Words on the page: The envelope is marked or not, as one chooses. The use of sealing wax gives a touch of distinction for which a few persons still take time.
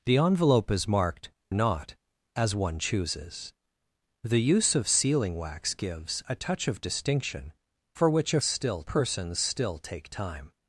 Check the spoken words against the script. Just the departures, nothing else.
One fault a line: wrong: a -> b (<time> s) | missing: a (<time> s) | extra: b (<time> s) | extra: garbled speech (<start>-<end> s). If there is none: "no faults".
missing: or (1.3 s)
wrong: few -> still (8.4 s)